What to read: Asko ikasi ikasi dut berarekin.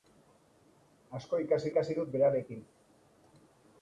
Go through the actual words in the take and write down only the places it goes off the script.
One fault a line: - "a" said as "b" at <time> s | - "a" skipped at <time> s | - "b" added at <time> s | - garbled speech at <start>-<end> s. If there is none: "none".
none